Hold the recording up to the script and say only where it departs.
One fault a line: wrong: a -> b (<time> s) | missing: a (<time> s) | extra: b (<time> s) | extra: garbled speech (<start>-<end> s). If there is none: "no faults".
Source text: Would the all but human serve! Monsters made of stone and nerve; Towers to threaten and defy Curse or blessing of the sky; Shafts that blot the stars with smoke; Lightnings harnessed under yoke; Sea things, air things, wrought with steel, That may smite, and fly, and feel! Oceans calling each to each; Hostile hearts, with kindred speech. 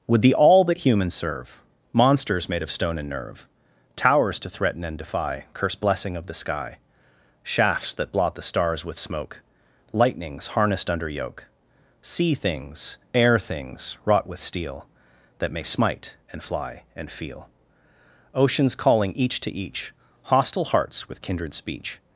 missing: or (5.8 s)